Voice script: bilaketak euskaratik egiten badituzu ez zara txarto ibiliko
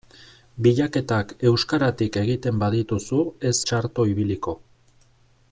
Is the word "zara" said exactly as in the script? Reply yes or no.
no